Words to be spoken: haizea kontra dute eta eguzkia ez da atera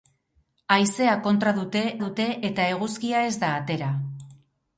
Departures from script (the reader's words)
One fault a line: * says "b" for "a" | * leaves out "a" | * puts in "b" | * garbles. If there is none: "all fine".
* puts in "dute"